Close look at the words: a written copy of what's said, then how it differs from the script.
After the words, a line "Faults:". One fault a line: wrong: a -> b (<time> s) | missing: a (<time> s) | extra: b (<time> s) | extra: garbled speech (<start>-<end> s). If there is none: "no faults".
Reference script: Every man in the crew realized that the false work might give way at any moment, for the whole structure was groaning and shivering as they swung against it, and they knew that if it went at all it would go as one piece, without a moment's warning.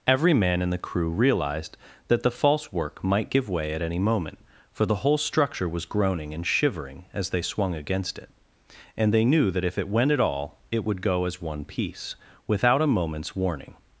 Every man in the crew realized that the false work might give way at any moment, for the whole structure was groaning and shivering as they swung against it, and they knew that if it went at all it would go as one piece, without a moment's warning.
Faults:
no faults